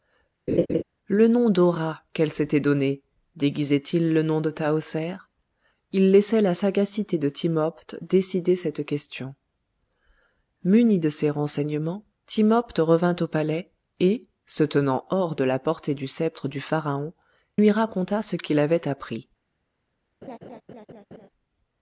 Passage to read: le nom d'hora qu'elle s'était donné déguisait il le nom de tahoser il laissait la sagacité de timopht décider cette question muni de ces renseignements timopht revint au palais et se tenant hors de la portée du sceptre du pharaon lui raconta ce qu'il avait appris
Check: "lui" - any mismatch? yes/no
no